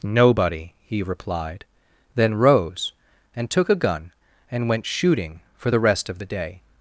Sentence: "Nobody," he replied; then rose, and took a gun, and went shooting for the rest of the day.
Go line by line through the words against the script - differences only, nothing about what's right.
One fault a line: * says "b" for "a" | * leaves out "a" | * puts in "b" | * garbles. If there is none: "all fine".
all fine